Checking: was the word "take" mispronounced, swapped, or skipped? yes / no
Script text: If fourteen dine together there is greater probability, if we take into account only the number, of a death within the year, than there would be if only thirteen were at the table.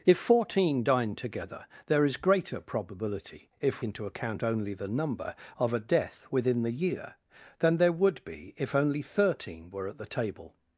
yes